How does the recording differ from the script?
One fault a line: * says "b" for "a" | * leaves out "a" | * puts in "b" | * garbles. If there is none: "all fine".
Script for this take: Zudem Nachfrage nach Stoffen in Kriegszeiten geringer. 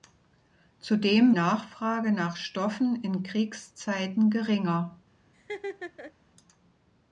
all fine